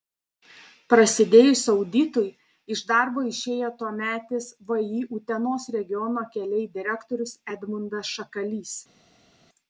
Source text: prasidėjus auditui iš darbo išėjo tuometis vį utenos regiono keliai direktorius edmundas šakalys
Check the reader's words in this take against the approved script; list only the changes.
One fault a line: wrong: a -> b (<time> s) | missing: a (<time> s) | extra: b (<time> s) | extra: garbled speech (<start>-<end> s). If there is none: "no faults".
no faults